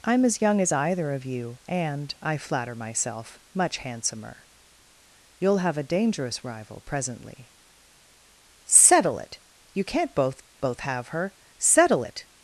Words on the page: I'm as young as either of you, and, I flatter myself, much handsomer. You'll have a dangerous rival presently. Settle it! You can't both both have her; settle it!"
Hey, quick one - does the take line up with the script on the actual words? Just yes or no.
yes